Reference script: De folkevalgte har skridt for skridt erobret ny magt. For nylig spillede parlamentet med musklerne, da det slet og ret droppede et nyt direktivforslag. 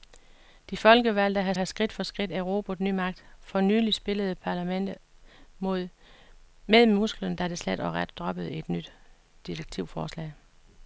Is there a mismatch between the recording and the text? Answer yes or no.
yes